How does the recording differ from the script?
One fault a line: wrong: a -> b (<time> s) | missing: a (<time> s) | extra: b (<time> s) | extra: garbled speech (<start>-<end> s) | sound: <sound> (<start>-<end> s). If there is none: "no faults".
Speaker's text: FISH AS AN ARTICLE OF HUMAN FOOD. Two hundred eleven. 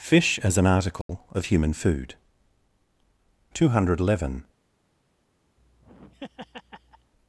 sound: dropout (1.0-1.1 s)
sound: laugh (5.6-7.1 s)